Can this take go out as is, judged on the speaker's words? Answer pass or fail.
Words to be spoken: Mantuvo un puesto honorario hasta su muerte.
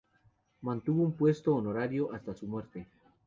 pass